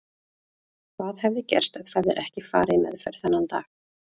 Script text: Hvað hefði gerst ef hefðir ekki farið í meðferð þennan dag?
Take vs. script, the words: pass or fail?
pass